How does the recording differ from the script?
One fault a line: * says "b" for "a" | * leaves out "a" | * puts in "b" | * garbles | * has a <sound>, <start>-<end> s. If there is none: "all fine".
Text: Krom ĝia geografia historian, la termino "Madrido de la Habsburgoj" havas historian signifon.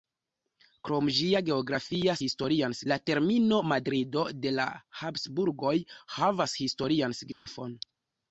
* has a dropout, 7.3-7.5 s